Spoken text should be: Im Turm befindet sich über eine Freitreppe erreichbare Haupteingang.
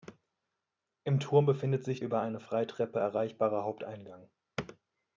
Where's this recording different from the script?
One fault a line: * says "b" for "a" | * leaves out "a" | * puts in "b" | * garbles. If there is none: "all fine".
all fine